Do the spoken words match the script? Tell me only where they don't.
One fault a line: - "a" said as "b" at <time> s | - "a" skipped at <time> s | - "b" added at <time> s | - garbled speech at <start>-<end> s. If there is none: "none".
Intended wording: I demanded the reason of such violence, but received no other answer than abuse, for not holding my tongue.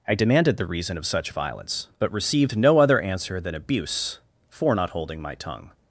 none